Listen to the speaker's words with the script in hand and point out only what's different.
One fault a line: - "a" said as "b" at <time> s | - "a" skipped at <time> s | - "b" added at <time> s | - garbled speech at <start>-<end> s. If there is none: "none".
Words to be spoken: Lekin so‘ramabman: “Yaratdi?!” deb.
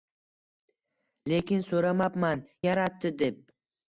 none